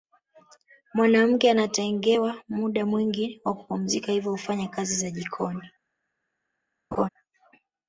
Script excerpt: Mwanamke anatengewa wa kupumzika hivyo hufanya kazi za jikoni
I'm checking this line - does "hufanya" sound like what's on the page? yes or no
yes